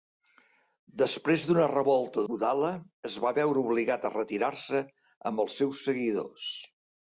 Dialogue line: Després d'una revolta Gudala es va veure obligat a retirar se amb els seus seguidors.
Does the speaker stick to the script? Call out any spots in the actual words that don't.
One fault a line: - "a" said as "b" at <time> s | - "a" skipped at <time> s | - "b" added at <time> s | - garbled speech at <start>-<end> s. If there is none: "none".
none